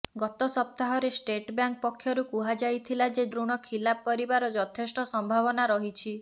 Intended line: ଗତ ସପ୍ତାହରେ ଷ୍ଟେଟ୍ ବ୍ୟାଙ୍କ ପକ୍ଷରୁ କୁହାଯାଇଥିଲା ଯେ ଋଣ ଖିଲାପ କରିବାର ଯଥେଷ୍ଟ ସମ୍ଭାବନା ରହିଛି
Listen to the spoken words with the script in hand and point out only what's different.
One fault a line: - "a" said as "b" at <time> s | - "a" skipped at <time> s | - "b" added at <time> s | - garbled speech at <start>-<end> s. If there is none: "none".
none